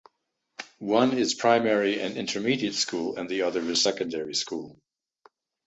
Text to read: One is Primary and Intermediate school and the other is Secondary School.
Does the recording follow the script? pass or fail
pass